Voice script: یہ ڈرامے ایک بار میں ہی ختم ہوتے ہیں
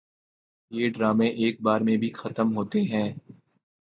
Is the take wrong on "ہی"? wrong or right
wrong